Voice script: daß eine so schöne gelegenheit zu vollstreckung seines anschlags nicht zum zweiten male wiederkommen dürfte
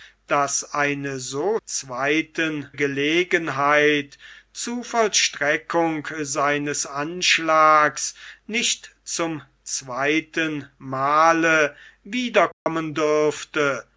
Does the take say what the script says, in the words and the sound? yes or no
no